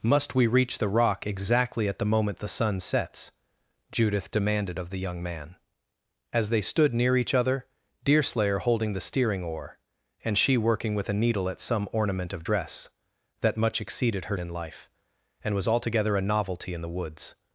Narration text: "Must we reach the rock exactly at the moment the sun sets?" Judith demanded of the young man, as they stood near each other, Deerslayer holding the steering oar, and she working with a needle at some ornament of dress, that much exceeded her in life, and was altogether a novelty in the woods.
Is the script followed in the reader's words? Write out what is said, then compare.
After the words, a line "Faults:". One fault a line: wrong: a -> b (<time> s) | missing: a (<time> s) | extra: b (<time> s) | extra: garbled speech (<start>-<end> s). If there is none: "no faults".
"Must we reach the rock exactly at the moment the sun sets?" Judith demanded of the young man, as they stood near each other, Deerslayer holding the steering oar, and she working with a needle at some ornament of dress, that much exceeded her in life, and was altogether a novelty in the woods.
Faults:
no faults